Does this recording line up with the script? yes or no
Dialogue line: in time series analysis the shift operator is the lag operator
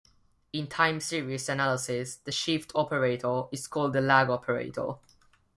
no